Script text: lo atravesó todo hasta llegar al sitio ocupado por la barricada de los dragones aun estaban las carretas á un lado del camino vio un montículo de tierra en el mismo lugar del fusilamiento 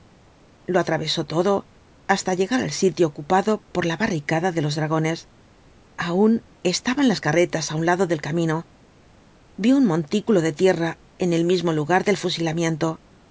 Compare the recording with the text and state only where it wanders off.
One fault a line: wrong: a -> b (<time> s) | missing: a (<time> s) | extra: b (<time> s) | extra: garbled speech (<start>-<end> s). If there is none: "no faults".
no faults